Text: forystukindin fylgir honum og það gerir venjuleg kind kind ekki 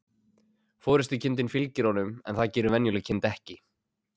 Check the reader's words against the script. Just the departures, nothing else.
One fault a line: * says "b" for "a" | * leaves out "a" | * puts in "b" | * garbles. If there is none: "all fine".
* says "en" for "og"
* leaves out "kind"